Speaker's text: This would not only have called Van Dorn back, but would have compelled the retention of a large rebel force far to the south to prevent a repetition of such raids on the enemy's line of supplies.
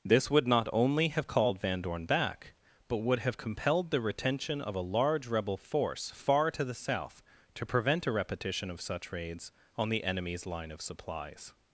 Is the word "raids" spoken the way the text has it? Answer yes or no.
yes